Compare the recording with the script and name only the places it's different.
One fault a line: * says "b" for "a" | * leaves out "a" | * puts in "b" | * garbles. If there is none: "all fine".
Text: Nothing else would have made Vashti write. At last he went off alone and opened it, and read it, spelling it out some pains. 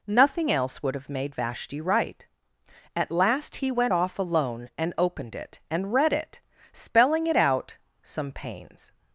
all fine